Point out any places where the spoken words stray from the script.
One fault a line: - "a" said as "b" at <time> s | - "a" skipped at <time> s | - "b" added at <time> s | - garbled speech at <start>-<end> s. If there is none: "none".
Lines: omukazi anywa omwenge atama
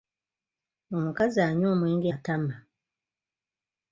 none